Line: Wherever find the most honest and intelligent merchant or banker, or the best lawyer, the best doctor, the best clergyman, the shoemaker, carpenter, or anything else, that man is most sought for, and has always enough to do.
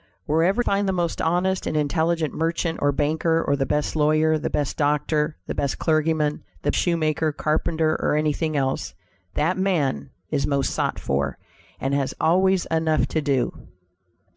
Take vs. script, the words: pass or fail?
pass